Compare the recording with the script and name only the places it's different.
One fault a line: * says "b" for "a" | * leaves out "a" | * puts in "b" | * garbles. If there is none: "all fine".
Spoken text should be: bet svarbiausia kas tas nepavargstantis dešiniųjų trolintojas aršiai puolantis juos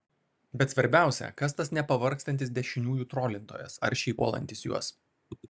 all fine